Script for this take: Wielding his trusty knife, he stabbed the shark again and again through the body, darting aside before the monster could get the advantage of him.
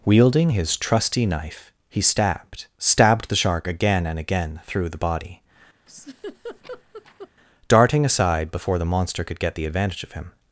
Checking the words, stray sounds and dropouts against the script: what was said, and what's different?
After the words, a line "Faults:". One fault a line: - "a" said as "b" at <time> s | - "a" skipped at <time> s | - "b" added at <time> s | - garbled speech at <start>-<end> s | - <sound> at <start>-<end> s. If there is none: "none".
Wielding his trusty knife, he stabbed stabbed the shark again and again through the body, darting aside before the monster could get the advantage of him.
Faults:
- "stabbed" added at 2.8 s
- laugh at 5.9-7.3 s